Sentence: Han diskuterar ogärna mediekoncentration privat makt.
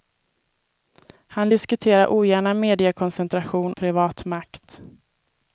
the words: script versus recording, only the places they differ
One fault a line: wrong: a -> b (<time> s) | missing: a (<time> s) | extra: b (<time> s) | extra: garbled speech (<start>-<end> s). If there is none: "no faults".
no faults